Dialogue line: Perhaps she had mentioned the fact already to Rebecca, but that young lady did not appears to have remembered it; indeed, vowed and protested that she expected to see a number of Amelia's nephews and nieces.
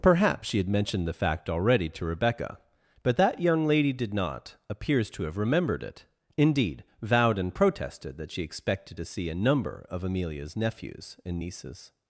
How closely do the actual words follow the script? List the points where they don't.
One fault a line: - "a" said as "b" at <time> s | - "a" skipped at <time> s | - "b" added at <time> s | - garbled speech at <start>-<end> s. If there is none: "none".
none